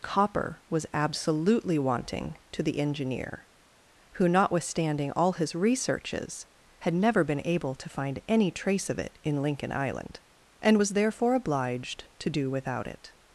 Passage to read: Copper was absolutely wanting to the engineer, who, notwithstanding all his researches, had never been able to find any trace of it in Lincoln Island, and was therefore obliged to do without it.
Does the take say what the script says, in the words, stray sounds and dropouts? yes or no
yes